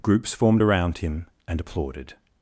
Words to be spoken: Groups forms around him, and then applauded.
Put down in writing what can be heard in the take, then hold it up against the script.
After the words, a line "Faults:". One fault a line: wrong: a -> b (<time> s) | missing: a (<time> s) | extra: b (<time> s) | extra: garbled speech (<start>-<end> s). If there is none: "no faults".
Groups formed around him, and applauded.
Faults:
wrong: forms -> formed (0.3 s)
missing: then (1.6 s)